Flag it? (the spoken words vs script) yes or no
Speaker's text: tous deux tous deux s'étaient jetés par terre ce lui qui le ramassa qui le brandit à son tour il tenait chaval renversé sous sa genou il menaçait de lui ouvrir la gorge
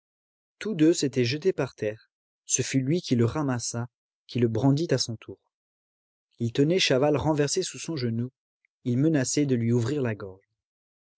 yes